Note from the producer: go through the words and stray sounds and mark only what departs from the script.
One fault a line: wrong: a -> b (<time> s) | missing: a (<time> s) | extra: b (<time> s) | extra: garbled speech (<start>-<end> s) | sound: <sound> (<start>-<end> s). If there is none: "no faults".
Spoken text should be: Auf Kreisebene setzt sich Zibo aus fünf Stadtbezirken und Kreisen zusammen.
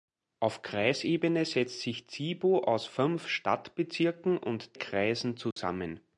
sound: dropout (5.5-5.6 s)